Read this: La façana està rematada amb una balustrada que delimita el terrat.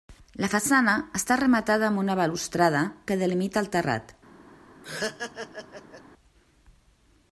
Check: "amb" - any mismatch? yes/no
no